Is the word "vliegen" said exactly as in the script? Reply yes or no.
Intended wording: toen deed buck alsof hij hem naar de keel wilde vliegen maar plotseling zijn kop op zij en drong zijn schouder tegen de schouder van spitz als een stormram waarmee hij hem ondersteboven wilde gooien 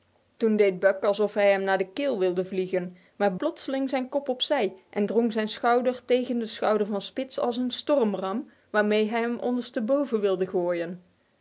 yes